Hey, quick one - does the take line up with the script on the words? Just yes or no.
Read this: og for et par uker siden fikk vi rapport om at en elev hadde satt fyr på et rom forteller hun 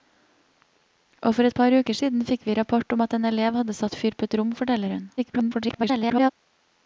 no